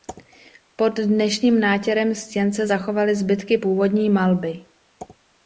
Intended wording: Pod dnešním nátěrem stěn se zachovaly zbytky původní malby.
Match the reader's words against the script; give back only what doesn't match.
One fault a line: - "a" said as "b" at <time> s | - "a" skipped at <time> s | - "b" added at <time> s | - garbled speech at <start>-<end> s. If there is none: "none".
none